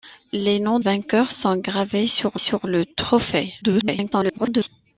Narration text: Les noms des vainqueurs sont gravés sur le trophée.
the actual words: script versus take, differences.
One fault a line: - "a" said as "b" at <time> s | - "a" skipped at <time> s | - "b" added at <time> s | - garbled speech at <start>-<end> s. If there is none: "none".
- "des" skipped at 0.8 s
- "sur" added at 2.3 s
- garbled speech at 3.6-4.7 s